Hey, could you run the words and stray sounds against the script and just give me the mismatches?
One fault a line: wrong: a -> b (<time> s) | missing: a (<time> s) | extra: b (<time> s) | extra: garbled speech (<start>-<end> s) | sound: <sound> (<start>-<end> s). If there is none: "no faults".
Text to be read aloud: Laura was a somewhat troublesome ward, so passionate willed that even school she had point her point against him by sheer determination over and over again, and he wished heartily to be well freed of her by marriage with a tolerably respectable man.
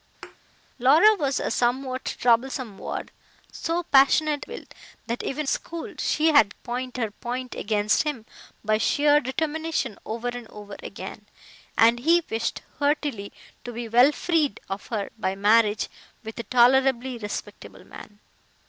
sound: thud (0.2-0.4 s)